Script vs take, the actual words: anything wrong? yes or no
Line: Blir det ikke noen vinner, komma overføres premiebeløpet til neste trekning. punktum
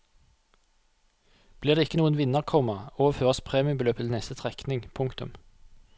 no